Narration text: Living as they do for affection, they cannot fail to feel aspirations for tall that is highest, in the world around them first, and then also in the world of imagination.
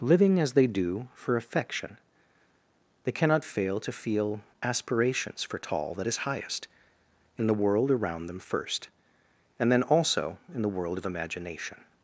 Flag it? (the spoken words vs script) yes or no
no